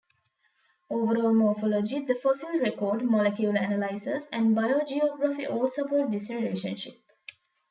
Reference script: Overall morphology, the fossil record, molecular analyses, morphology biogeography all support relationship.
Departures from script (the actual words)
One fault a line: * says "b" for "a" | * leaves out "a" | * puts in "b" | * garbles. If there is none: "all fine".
* says "and" for "morphology"
* puts in "this"